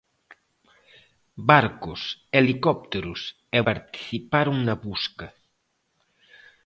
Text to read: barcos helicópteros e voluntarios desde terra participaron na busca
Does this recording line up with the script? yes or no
no